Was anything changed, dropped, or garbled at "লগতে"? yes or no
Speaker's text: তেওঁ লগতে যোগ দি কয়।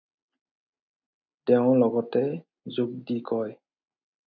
no